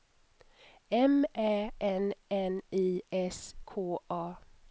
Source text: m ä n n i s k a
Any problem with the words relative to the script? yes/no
no